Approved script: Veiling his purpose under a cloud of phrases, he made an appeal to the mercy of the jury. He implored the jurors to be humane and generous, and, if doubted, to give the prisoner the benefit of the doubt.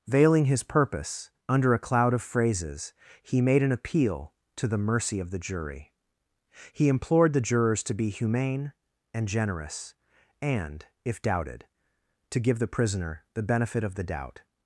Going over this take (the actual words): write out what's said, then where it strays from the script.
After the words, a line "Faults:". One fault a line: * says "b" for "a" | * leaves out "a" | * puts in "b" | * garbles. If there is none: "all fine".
Veiling his purpose under a cloud of phrases, he made an appeal to the mercy of the jury. He implored the jurors to be humane and generous, and, if doubted, to give the prisoner the benefit of the doubt.
Faults:
all fine